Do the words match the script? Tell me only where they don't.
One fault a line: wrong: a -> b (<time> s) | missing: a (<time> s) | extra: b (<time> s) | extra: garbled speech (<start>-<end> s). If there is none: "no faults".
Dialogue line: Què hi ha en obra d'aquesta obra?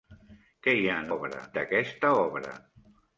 no faults